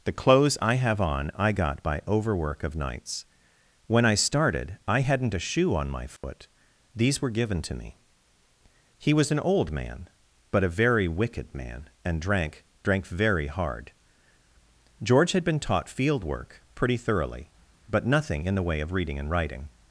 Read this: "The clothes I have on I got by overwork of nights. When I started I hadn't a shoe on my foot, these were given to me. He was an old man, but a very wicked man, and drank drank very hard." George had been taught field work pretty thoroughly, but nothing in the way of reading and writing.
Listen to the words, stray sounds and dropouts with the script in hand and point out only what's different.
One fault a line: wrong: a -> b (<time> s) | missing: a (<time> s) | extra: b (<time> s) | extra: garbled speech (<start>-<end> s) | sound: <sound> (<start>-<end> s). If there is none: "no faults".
sound: dropout (6.2-6.2 s)